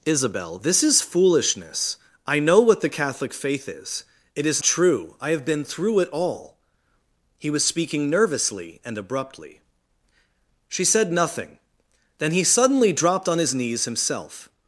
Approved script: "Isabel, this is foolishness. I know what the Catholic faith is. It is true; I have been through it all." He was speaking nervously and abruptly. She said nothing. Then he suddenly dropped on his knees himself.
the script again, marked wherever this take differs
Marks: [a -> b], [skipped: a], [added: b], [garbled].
"Isabel, this is foolishness. I know what the Catholic faith is. It is true; I have been through it all." He was speaking nervously and abruptly. She said nothing. Then he suddenly dropped on his knees himself.